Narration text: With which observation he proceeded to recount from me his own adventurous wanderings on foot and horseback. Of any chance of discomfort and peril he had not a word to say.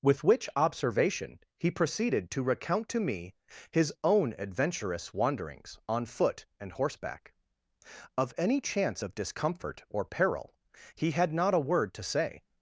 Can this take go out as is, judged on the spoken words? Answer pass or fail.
fail